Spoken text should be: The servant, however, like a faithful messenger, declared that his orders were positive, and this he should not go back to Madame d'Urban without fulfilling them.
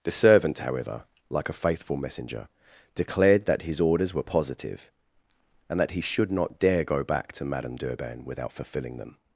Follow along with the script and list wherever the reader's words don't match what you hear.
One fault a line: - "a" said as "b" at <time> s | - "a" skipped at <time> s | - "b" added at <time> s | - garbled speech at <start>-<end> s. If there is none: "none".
- "this" said as "that" at 5.8 s
- "dare" added at 6.6 s